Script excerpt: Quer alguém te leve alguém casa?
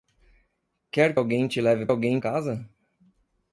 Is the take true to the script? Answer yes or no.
yes